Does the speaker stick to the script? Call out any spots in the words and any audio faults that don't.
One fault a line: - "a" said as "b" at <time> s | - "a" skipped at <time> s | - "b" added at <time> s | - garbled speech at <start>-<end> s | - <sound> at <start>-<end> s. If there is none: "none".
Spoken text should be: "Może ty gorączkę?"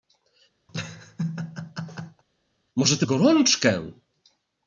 - laugh at 0.7-2.2 s